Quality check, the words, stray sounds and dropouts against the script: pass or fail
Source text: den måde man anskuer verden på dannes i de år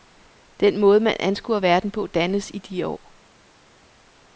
pass